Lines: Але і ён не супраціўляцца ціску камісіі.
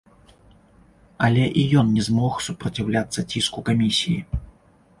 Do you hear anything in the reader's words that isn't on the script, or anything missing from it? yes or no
yes